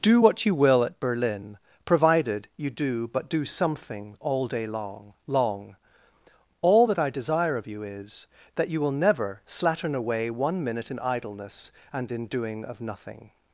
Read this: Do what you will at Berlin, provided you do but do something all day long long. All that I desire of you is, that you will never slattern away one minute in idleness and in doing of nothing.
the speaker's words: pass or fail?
pass